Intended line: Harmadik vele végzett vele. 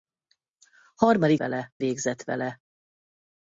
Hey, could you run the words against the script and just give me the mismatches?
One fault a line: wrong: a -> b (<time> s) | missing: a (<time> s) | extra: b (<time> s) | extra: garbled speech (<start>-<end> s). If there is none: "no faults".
no faults